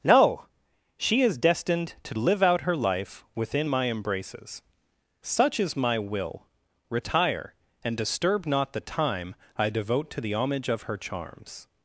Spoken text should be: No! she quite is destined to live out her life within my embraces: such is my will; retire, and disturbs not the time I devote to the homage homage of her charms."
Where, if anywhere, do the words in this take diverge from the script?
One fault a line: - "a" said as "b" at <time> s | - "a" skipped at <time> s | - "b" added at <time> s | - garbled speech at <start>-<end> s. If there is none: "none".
- "quite" skipped at 1.2 s
- "disturbs" said as "disturb" at 8.0 s
- "homage" skipped at 10.7 s